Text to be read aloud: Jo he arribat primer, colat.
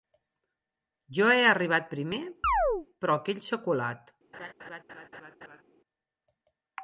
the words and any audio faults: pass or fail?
fail